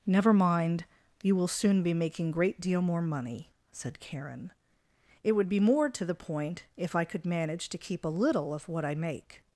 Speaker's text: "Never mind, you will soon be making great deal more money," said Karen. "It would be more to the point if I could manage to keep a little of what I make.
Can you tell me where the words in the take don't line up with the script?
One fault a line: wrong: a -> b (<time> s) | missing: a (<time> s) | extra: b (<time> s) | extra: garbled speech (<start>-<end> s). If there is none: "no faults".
no faults